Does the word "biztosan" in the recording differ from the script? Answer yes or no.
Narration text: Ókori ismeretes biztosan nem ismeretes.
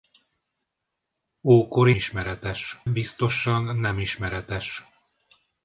no